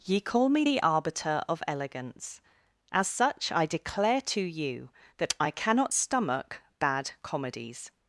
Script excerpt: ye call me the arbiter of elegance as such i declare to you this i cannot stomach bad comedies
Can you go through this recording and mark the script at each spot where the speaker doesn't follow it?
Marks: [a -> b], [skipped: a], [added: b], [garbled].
ye call me the arbiter of elegance as such i declare to you [this -> that] i cannot stomach bad comedies